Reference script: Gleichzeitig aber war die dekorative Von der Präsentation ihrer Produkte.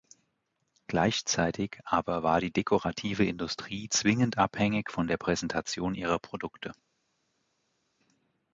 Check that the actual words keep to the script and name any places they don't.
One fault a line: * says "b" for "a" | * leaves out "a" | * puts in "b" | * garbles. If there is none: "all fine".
* puts in "Industrie zwingend abhängig"